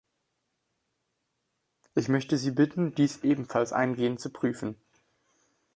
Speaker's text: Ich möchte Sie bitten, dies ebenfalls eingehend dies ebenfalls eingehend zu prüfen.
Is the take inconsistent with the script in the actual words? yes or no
yes